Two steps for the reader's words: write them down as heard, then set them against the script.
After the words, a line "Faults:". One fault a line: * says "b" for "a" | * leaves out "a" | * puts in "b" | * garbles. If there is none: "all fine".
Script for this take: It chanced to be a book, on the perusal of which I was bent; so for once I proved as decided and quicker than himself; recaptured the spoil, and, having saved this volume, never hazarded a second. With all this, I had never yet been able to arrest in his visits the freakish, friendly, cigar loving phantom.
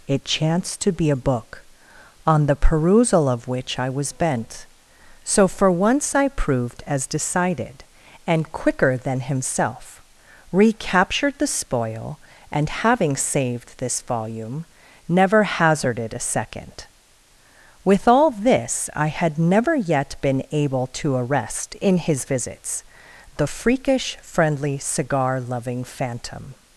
It chanced to be a book, on the perusal of which I was bent; so for once I proved as decided and quicker than himself; recaptured the spoil, and, having saved this volume, never hazarded a second. With all this, I had never yet been able to arrest in his visits the freakish, friendly, cigar loving phantom.
Faults:
all fine